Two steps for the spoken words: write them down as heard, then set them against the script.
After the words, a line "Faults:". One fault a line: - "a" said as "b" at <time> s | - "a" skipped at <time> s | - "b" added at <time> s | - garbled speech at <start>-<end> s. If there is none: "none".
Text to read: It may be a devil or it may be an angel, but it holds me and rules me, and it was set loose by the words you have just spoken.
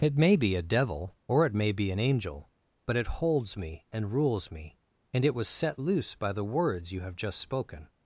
It may be a devil or it may be an angel, but it holds me and rules me, and it was set loose by the words you have just spoken.
Faults:
none